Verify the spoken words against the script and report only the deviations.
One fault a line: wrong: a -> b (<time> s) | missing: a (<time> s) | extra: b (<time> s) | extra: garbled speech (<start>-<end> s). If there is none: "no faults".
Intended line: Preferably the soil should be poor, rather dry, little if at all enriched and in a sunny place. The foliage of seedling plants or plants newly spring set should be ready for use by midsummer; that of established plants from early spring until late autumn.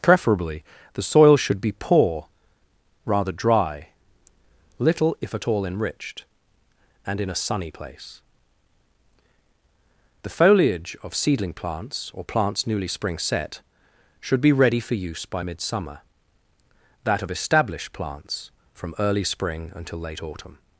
no faults